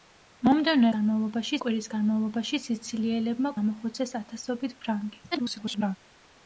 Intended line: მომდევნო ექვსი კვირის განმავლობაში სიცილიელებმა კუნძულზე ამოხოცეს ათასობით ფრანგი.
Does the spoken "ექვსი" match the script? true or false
false